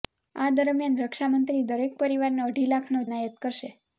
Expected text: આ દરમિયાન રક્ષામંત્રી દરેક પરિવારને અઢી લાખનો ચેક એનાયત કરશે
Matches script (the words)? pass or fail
fail